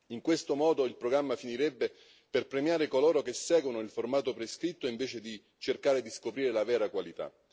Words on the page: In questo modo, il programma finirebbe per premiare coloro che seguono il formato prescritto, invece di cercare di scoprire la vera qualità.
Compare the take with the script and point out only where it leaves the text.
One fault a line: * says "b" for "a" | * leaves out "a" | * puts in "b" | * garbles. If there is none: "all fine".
all fine